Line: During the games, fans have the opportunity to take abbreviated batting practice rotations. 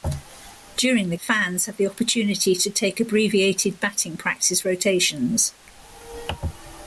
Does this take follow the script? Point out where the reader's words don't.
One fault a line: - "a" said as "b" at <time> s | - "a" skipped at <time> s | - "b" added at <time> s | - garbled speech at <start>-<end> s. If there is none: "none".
- "games" skipped at 1.1 s